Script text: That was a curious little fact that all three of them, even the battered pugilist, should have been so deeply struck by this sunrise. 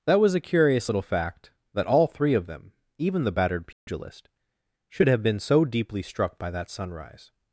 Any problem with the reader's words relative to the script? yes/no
yes